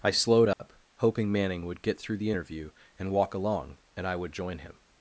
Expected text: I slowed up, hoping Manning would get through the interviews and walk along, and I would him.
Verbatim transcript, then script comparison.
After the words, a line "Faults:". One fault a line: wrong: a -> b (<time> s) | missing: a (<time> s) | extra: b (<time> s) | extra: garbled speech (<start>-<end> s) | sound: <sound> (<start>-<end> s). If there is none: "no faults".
I slowed up, hoping Manning would get through the interview and walk along, and I would join him.
Faults:
sound: dropout (0.5-0.6 s)
wrong: interviews -> interview (2.3 s)
extra: join (4.3 s)